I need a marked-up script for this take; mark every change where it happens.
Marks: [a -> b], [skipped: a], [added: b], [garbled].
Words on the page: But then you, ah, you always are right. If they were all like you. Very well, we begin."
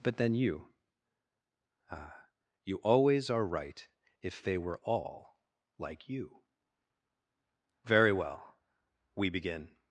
But then you, ah, you always are right. If they were all like you. Very well, we begin."